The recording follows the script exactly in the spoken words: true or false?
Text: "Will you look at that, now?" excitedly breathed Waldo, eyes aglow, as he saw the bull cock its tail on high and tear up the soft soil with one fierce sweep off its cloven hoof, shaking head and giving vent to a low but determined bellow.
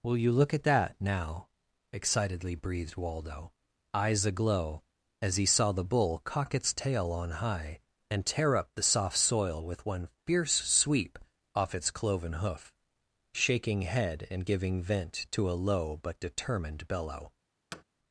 true